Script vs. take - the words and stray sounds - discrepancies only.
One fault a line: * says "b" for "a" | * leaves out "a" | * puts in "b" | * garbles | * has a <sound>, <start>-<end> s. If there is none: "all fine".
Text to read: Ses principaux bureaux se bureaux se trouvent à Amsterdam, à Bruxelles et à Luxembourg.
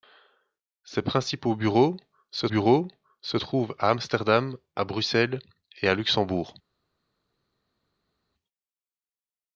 all fine